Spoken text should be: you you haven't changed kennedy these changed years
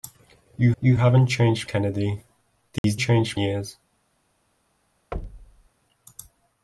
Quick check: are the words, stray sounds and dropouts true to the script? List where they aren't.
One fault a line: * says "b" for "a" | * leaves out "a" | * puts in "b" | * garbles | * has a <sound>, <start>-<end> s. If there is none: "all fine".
* has a dropout, 2.8-2.8 s
* has a thud, 5.1-5.7 s